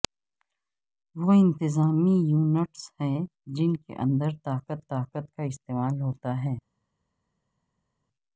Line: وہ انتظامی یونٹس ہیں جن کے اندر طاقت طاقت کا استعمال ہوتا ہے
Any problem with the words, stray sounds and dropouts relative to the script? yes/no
no